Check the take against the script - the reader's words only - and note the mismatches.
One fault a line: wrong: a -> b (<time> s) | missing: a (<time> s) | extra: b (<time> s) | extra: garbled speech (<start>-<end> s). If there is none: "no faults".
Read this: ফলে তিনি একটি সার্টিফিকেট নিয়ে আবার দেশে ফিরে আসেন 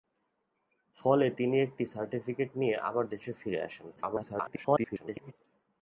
extra: garbled speech (4.0-5.3 s)